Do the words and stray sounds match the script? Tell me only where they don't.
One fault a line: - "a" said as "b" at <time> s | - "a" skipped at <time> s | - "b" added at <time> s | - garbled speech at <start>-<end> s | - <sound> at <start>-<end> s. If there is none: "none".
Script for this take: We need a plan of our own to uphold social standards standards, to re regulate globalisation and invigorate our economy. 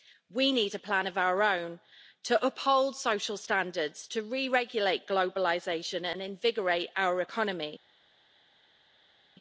- "standards" skipped at 4.1 s